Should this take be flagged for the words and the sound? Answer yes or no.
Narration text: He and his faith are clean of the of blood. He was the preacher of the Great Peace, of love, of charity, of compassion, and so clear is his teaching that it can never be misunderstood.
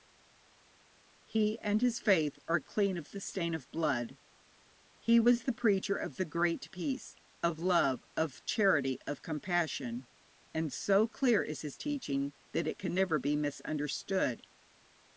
yes